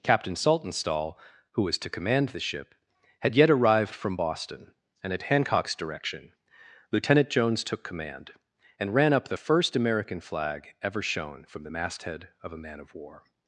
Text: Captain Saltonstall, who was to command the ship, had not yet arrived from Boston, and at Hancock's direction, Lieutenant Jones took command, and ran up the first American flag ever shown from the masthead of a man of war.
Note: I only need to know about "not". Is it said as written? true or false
false